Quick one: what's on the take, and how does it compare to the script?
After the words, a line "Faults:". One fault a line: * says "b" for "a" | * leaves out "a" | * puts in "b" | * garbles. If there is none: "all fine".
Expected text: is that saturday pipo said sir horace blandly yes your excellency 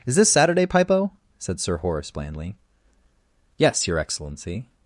is this saturday pipo said sir horace blandly yes your excellency
Faults:
* says "this" for "that"